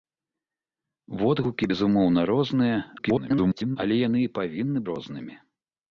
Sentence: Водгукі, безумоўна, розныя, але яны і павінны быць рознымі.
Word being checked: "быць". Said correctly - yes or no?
no